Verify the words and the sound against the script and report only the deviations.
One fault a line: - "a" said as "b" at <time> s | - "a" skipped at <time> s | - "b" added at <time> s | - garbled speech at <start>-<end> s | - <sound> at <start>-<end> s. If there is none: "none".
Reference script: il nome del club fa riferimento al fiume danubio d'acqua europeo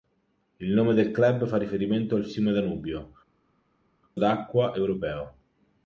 none